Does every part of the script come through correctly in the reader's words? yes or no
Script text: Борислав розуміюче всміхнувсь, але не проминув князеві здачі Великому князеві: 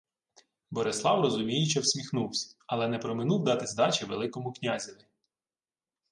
no